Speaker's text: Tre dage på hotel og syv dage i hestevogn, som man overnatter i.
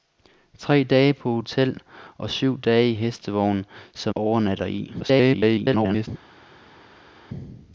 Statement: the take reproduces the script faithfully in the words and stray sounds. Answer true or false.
false